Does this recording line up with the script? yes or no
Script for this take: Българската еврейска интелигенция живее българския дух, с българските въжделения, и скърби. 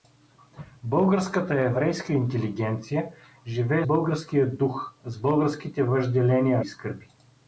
yes